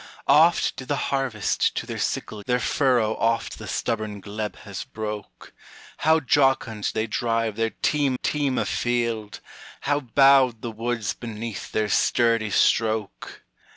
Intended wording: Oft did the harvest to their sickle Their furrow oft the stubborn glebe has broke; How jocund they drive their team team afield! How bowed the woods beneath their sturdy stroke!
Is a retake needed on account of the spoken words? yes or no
no